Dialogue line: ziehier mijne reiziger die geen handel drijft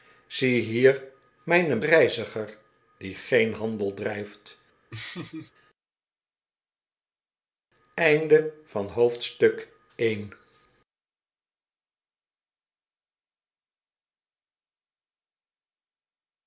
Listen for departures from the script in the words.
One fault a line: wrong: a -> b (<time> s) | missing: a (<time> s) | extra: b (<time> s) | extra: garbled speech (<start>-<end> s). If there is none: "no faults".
no faults